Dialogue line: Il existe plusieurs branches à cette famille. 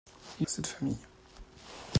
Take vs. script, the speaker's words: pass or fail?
fail